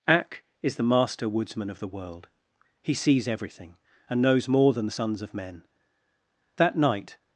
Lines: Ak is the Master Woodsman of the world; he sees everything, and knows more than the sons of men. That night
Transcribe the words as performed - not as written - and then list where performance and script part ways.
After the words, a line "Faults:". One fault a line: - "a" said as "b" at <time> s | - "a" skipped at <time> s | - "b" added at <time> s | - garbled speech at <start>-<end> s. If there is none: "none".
Ak is the Master Woodsman of the world; he sees everything, and knows more than the sons of men. That night
Faults:
none